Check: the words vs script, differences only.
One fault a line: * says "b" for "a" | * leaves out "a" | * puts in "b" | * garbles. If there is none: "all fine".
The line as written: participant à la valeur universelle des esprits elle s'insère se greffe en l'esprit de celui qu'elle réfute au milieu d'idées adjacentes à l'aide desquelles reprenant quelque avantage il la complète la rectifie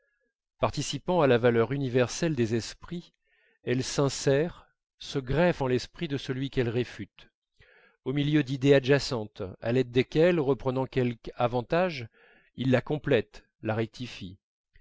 all fine